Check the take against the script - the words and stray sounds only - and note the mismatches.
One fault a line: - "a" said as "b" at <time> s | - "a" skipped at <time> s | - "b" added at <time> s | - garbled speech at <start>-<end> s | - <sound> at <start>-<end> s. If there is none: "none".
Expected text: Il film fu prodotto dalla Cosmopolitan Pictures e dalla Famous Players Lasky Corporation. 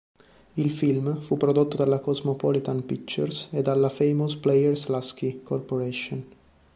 none